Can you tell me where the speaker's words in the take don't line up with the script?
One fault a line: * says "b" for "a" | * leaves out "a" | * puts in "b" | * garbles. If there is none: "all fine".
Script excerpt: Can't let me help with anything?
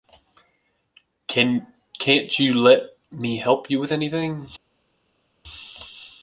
* puts in "you"
* puts in "you"